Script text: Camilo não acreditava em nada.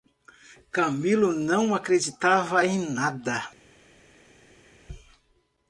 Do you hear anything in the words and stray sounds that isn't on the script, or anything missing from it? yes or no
no